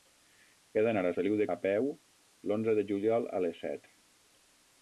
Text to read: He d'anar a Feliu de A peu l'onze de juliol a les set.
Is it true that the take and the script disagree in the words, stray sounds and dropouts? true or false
false